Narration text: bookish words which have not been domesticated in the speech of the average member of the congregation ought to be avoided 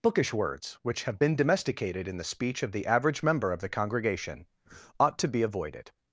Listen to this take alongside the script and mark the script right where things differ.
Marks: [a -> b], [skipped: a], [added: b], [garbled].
bookish words which have [skipped: not] been domesticated in the speech of the average member of the congregation ought to be avoided